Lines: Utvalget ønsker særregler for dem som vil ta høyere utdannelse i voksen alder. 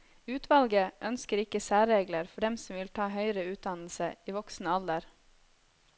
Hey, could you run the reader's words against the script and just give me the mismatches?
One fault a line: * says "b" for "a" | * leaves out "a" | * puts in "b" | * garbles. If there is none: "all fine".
* puts in "ikke"